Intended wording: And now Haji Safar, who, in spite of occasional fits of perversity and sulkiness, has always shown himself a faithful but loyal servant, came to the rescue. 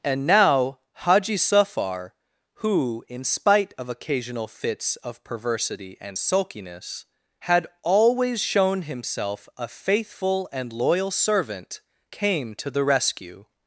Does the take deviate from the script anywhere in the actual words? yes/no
yes